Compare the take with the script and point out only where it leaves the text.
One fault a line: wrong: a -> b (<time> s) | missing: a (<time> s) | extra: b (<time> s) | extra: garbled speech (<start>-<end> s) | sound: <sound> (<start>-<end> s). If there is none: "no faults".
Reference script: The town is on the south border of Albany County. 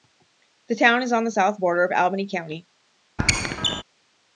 sound: squeak (3.2-3.8 s)